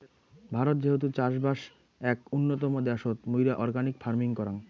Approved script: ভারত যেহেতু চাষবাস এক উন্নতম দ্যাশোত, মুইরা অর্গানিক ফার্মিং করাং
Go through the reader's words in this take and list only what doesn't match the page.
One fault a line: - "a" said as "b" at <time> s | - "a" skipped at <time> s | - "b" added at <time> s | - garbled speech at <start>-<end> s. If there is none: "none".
none